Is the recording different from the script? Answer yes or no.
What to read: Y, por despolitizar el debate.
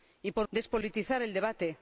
no